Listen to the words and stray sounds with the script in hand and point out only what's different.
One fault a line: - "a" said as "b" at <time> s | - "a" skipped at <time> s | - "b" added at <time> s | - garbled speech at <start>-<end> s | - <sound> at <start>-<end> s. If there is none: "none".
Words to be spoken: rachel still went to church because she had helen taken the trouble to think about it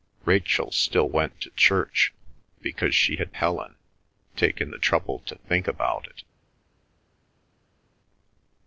none